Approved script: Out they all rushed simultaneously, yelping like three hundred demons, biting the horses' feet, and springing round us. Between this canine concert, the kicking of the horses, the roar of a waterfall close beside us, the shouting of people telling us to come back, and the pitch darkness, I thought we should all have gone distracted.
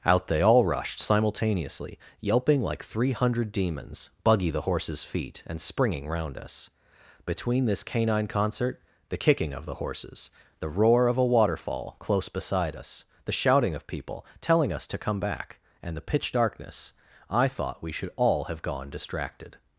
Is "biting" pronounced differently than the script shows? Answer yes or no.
yes